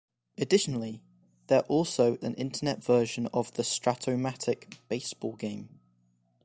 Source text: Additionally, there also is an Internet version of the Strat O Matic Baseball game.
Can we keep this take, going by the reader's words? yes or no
no